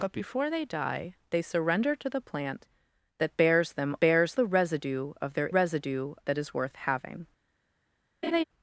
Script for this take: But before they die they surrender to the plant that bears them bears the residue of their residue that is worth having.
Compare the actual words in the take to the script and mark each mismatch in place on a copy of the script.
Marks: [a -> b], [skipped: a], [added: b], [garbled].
But before they die they surrender to the plant that bears them bears the residue of their residue that is worth having.